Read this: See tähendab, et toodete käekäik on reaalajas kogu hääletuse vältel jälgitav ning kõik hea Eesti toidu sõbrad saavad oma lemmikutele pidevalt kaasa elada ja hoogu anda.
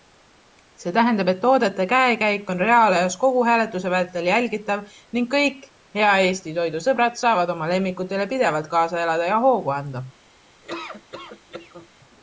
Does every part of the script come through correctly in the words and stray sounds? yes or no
no